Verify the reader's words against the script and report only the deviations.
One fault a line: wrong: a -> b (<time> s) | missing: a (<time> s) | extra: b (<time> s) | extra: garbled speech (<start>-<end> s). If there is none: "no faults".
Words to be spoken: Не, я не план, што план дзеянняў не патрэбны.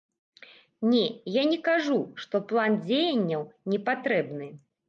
wrong: план -> кажу (1.7 s)